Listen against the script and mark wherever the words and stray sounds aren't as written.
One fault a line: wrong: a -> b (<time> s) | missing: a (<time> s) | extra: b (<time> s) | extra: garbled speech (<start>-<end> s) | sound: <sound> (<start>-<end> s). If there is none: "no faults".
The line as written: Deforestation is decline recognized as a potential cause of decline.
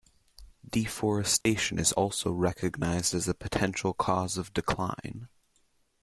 sound: dropout (1.4-1.5 s)
wrong: decline -> also (1.9 s)